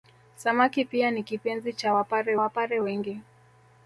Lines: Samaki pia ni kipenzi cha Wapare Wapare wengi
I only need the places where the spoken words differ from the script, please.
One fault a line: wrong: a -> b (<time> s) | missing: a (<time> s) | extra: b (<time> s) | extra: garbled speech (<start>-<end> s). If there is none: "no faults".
no faults